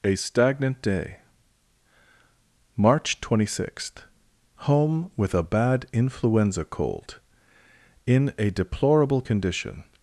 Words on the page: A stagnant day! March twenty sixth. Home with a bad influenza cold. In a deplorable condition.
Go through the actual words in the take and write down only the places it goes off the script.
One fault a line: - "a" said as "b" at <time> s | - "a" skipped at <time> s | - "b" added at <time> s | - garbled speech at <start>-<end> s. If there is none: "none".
none